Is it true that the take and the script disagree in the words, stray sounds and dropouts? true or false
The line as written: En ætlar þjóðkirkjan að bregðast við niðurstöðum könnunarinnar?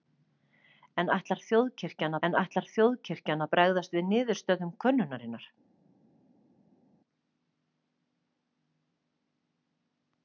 true